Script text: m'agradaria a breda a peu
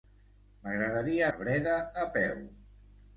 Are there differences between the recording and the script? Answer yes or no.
no